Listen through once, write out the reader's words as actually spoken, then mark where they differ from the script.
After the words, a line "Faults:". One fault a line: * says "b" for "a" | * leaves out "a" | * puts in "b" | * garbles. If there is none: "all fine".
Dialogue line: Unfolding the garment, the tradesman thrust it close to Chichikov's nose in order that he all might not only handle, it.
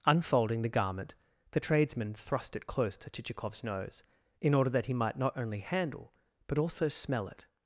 Unfolding the garment, the tradesman thrust it close to Chichikov's nose in order that he might not only handle, but also smell it.
Faults:
* leaves out "all"
* puts in "but also smell"